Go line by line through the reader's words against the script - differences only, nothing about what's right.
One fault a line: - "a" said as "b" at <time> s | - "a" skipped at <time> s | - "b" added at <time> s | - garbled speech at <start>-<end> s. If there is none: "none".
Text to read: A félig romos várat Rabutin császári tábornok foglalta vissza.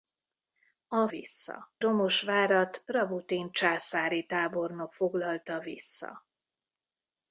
- "félig" said as "vissza" at 1.1 s